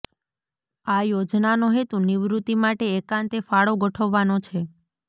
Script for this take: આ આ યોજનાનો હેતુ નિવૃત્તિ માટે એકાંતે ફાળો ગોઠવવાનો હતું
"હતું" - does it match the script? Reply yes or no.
no